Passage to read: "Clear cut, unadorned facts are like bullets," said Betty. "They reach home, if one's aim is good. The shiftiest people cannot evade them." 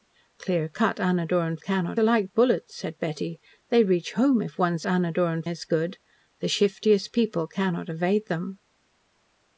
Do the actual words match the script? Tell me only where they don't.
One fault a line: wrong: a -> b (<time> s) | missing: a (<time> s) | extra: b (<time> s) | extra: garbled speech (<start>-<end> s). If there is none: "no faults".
wrong: facts -> cannot (1.6 s)
wrong: aim -> unadorned (4.8 s)